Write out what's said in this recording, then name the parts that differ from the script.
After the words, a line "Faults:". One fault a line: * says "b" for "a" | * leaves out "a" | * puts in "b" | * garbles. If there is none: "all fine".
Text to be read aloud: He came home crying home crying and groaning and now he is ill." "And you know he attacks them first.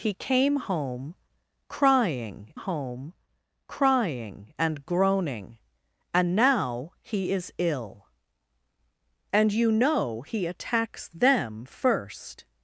He came home crying home crying and groaning and now he is ill." "And you know he attacks them first.
Faults:
all fine